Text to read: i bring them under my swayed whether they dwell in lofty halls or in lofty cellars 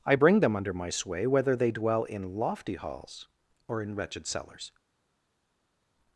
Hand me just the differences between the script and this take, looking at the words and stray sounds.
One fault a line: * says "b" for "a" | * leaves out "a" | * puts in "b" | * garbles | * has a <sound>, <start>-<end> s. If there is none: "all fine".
* says "sway" for "swayed"
* says "wretched" for "lofty"